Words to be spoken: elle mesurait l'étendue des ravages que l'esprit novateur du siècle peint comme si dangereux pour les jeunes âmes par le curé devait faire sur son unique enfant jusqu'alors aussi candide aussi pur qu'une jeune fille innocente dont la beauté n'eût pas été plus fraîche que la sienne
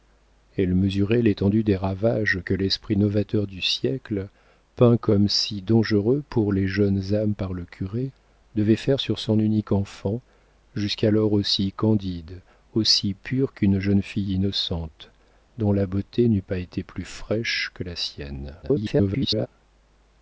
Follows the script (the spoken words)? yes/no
no